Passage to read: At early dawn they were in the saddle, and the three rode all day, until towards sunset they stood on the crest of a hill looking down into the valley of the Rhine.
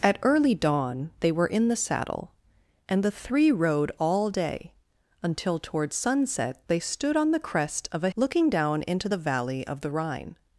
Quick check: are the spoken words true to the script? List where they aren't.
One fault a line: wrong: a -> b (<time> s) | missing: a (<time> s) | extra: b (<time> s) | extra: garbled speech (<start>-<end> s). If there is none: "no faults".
missing: hill (8.1 s)